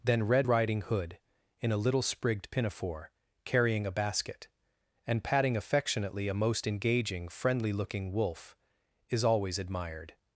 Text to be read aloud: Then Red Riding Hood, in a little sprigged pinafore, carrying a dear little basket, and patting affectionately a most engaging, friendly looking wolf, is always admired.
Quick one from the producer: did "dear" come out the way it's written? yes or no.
no